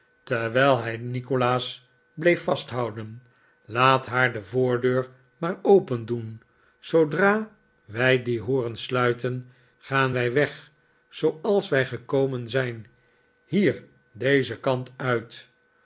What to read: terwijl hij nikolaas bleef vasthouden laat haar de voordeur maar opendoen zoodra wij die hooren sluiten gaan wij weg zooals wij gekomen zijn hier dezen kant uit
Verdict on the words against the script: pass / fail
pass